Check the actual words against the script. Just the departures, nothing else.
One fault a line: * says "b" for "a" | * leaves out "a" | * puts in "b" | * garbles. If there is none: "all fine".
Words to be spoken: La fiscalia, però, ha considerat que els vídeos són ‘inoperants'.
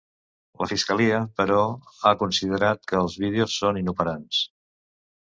all fine